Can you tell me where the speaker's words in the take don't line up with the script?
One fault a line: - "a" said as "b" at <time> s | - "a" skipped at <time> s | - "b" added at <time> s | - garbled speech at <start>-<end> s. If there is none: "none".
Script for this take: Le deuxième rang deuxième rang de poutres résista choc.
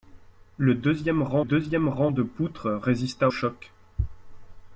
none